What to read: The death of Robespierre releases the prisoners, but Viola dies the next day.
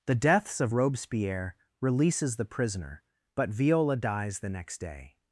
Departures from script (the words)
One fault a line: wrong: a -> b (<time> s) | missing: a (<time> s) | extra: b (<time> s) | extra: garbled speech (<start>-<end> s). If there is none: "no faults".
wrong: death -> deaths (0.1 s)
wrong: prisoners -> prisoner (2.5 s)